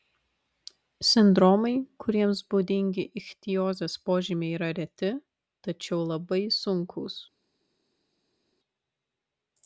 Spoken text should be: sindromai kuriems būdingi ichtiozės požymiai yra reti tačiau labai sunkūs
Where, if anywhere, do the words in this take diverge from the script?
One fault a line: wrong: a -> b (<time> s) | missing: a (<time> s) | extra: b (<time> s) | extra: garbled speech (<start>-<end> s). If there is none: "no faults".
no faults